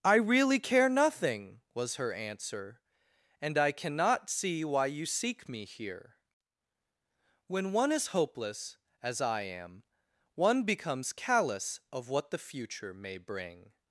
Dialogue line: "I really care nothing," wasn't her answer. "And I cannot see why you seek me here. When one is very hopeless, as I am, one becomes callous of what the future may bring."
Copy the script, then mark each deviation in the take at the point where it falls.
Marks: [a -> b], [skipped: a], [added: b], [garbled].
"I really care nothing," [wasn't -> was] her answer. "And I cannot see why you seek me here. When one is [skipped: very] hopeless, as I am, one becomes callous of what the future may bring."